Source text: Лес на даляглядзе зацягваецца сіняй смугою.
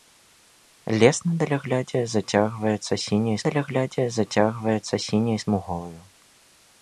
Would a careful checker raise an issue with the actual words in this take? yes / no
yes